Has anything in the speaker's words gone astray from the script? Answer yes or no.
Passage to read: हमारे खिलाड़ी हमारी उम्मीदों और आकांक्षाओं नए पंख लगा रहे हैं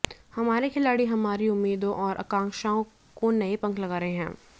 yes